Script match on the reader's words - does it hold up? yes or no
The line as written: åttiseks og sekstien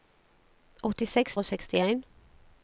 yes